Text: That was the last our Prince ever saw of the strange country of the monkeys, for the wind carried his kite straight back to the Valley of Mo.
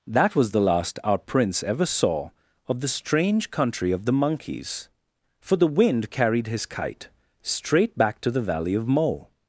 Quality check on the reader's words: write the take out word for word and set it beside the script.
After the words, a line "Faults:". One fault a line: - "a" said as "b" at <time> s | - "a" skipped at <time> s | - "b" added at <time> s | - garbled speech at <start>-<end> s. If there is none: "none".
That was the last our Prince ever saw of the strange country of the monkeys, for the wind carried his kite straight back to the Valley of Mo.
Faults:
none